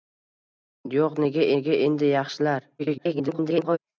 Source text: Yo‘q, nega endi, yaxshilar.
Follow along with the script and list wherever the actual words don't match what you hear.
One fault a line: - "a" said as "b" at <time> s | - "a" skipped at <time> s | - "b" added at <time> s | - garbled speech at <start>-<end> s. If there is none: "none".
- "nega" added at 1.6 s
- garbled speech at 2.8-3.8 s